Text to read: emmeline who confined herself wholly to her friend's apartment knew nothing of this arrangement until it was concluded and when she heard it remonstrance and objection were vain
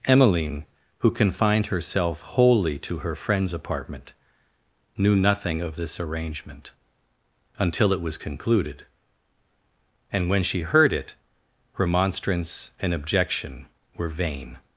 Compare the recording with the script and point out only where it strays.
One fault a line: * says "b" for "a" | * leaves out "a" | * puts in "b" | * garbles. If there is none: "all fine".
all fine